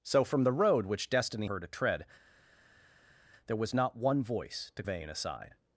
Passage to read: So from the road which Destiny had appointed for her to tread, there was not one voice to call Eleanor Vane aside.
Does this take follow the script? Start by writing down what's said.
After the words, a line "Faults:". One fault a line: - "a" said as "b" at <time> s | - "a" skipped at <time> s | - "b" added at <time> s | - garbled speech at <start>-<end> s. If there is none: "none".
So from the road which Destiny her to tread, there was not one voice to Vane aside.
Faults:
- "had appointed for" skipped at 1.5 s
- "call Eleanor" skipped at 4.8 s